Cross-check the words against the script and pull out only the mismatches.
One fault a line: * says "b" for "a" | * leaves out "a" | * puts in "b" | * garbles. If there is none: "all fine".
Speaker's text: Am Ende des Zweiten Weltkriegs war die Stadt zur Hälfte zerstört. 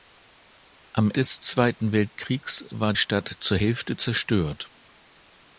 * leaves out "Ende"
* leaves out "die"